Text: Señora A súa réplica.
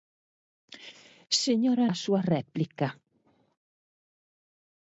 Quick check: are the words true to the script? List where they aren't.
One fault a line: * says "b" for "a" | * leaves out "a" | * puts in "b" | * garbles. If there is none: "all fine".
all fine